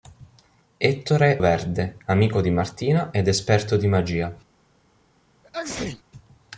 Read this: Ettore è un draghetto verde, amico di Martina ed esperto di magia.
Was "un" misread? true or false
true